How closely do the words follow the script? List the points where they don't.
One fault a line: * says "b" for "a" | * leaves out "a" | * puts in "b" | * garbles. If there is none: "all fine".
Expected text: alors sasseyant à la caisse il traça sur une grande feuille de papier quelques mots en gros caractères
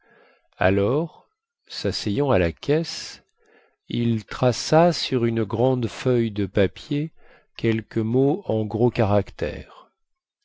all fine